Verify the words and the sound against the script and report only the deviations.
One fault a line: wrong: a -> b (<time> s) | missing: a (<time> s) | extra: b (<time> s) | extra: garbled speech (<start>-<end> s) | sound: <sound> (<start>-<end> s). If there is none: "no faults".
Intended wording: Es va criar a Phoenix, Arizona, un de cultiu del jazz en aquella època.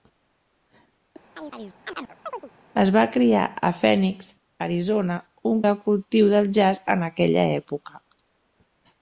sound: chirp (1.3-2.5 s)